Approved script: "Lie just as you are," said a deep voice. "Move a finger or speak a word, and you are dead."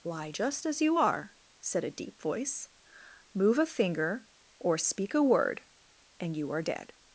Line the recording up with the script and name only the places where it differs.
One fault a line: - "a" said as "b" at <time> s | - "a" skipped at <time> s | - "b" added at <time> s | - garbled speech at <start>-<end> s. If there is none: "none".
none